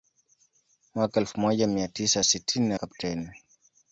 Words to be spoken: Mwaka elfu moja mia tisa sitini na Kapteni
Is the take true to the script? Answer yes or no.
yes